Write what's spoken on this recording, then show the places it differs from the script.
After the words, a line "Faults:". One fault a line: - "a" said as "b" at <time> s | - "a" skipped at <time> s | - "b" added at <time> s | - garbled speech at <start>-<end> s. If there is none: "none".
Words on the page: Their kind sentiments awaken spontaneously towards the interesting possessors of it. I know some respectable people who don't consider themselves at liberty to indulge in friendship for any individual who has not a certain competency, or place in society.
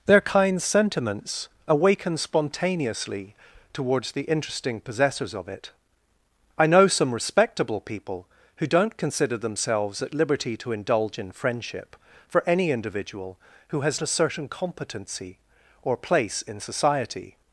Their kind sentiments awaken spontaneously towards the interesting possessors of it. I know some respectable people who don't consider themselves at liberty to indulge in friendship for any individual who has a certain competency, or place in society.
Faults:
- "not" skipped at 14.0 s